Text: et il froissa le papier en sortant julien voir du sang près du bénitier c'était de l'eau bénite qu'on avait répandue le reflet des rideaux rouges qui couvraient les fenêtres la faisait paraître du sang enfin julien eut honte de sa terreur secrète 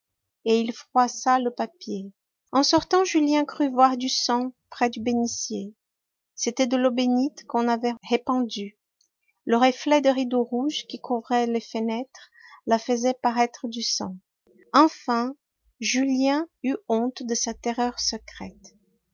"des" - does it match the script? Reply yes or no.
yes